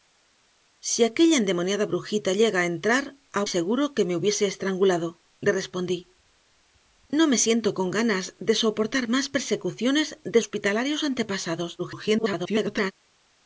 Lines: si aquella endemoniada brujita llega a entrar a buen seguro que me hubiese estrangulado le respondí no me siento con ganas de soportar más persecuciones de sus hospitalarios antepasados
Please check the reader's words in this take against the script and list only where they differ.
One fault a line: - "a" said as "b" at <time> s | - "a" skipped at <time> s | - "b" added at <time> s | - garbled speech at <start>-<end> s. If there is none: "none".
- "buen" skipped at 3.4 s
- "sus" skipped at 10.4 s
- garbled speech at 11.8-12.9 s